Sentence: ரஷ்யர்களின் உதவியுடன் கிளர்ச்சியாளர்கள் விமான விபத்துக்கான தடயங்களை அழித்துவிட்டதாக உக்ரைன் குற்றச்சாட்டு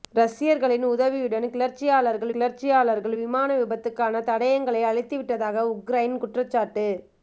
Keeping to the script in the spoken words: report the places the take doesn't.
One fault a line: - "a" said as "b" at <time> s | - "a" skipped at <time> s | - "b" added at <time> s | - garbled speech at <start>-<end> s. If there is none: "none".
- "கிளர்ச்சியாளர்கள்" added at 2.3 s